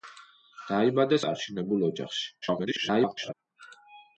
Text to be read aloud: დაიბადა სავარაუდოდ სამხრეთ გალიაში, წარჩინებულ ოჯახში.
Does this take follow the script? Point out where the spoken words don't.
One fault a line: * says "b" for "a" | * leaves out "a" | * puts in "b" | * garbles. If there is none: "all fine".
* leaves out "სავარაუდოდ სამხრეთ გალიაში"
* garbles